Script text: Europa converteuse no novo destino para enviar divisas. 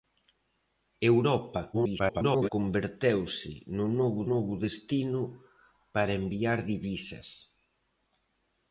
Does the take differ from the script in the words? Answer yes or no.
yes